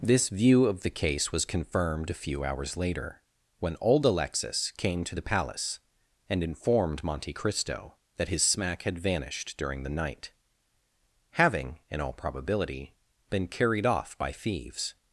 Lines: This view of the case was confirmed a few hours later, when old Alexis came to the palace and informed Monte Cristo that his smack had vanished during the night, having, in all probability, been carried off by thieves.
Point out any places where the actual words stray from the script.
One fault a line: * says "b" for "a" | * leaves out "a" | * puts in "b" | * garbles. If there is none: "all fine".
all fine